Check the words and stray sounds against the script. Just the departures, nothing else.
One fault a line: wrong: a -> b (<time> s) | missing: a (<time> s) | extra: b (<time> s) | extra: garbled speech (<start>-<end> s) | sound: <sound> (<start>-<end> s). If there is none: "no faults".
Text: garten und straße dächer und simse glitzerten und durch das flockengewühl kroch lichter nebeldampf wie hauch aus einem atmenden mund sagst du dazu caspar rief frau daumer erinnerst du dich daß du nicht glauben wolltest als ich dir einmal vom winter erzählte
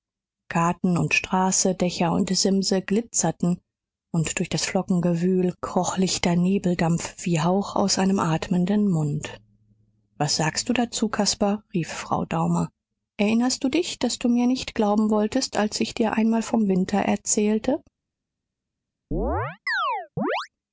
extra: was (10.2 s)
extra: mir (14.3 s)
sound: chirp (19.1-20.5 s)